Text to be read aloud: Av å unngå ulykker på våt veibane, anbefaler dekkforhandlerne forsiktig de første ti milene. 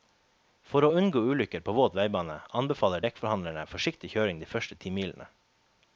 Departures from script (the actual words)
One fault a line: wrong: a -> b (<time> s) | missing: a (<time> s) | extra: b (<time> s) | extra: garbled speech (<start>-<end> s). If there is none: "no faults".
wrong: Av -> For (0.7 s)
extra: kjøring (4.1 s)